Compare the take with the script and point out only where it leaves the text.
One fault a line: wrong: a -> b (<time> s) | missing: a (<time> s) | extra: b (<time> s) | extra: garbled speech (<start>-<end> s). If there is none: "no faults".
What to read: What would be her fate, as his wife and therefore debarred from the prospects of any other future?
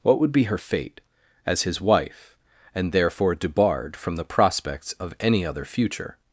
no faults